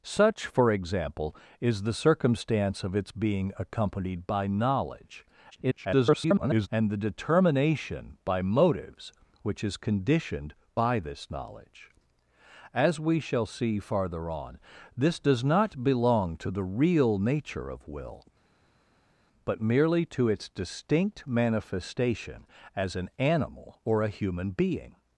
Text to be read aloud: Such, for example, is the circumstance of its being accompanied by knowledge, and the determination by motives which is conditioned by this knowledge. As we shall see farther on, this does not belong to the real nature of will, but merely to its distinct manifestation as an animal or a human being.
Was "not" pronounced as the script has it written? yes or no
yes